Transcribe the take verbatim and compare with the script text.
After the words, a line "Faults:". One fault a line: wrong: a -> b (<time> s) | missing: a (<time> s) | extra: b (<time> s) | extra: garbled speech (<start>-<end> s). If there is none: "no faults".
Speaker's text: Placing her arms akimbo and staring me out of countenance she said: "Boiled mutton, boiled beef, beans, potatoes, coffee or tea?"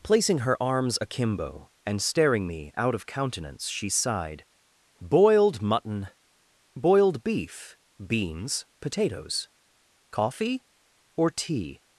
Placing her arms akimbo and staring me out of countenance she sighed: "Boiled mutton, boiled beef, beans, potatoes, coffee or tea?"
Faults:
wrong: said -> sighed (3.9 s)